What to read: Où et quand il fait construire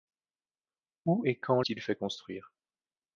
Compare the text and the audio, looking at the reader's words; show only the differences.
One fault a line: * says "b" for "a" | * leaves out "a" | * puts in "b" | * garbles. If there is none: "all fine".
all fine